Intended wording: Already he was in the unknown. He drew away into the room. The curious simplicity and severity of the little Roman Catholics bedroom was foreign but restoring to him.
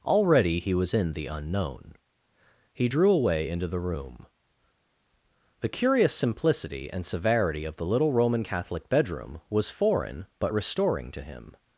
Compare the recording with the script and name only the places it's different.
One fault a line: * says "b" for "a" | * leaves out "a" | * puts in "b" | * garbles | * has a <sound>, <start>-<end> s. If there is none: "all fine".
* says "Catholic" for "Catholics"